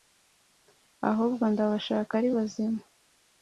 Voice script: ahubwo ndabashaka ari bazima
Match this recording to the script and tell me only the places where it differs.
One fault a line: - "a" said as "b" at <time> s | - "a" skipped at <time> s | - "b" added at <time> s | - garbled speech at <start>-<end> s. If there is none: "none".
none